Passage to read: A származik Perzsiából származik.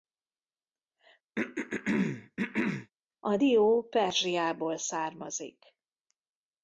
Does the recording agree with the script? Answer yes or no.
no